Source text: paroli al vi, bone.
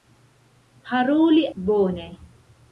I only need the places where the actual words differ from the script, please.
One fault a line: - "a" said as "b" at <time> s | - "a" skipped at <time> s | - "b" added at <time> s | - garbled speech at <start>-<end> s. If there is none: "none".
- "al vi" skipped at 1.5 s